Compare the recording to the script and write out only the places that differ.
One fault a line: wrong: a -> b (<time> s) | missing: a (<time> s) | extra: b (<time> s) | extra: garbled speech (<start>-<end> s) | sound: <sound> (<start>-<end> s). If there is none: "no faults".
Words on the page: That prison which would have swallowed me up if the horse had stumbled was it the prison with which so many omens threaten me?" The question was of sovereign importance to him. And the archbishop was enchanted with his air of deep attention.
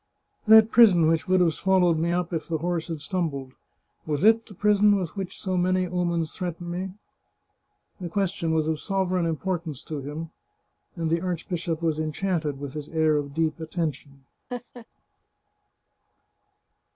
sound: laugh (14.5-14.9 s)